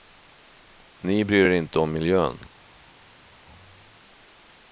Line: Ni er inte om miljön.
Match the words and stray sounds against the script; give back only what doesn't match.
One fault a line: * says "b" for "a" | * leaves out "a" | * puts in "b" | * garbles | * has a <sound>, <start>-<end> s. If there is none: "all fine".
* puts in "bryr"